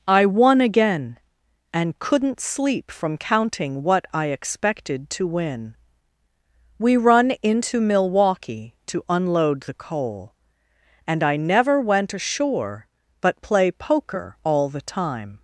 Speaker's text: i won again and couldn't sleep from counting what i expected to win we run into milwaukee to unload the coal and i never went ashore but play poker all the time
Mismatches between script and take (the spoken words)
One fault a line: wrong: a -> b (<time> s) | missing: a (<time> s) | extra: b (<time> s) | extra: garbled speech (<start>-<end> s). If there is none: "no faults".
no faults